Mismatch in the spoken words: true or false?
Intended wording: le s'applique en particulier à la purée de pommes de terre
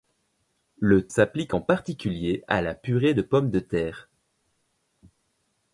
false